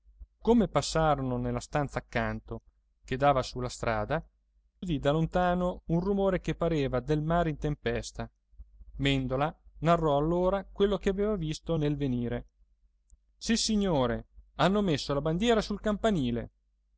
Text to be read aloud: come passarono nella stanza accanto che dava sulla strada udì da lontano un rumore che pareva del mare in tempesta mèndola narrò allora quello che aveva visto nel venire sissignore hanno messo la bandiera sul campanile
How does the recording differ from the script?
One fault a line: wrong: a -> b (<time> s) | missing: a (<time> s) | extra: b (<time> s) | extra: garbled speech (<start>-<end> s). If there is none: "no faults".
no faults